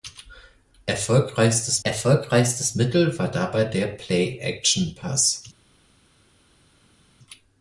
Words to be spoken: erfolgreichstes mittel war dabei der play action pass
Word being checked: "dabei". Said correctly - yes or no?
yes